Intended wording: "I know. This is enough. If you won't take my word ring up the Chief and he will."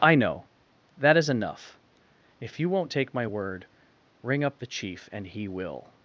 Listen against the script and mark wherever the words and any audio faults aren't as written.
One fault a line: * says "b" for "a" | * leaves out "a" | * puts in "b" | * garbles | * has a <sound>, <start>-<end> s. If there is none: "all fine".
* says "That" for "This"